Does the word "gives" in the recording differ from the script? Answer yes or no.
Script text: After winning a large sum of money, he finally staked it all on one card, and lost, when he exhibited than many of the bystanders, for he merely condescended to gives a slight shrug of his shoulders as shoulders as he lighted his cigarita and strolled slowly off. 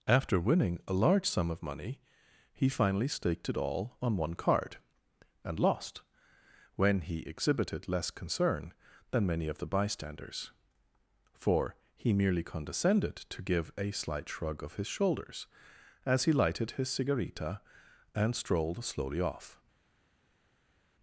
yes